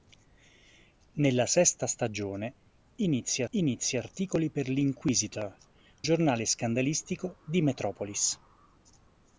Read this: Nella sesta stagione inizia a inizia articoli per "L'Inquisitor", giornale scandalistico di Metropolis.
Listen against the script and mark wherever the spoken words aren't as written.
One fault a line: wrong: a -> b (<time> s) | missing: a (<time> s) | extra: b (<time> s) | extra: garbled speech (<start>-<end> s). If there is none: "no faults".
no faults